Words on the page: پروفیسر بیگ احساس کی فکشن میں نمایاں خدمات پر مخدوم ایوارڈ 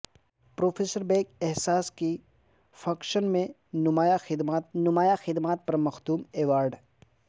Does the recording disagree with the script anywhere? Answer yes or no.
yes